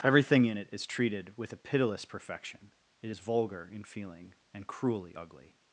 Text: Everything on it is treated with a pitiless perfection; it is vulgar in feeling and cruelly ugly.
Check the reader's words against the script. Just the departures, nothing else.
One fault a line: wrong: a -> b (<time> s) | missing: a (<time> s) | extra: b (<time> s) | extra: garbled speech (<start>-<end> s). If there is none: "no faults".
wrong: on -> in (0.5 s)